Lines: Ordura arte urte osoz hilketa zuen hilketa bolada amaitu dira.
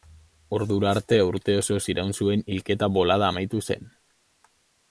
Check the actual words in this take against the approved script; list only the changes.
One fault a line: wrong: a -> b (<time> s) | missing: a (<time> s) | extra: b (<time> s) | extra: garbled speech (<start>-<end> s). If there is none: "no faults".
wrong: hilketa -> iraun (1.9 s)
wrong: dira -> zen (3.7 s)